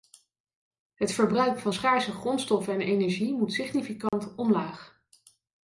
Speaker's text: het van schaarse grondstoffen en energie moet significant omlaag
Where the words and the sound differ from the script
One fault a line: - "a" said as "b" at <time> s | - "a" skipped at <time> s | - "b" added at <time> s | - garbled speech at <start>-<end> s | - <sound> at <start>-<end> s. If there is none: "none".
- "verbruik" added at 1.1 s
- dropout at 4.1-4.1 s